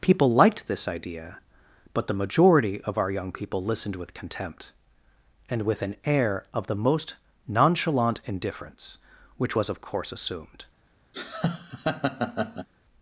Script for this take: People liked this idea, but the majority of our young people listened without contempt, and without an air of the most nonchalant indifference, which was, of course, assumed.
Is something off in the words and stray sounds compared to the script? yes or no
yes